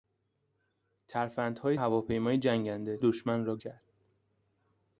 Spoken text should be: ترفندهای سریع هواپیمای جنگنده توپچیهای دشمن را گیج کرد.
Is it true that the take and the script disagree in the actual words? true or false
true